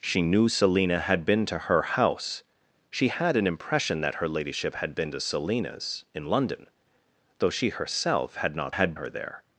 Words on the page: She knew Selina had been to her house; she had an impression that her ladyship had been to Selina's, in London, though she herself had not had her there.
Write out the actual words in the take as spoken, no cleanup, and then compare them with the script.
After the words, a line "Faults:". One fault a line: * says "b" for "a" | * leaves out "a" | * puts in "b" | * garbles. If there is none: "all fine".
She knew Selina had been to her house; she had an impression that her ladyship had been to Selina's, in London, though she herself had not had her there.
Faults:
all fine